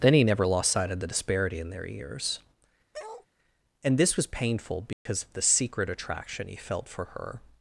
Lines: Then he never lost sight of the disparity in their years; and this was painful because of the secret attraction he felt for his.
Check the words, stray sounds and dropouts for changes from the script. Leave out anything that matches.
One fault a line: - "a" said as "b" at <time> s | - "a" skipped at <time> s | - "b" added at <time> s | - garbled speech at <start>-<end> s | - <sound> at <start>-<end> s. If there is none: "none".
- bark at 2.9-3.3 s
- dropout at 4.9-5.1 s
- "his" said as "her" at 7.0 s